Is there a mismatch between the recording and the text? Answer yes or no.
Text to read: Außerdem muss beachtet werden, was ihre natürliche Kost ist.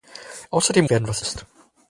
yes